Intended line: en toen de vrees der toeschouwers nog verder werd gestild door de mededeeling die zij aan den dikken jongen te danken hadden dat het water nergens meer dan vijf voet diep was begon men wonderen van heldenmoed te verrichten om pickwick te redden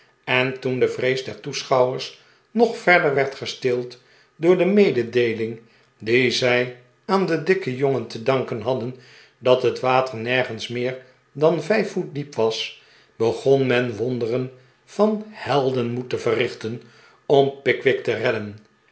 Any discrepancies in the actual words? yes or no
no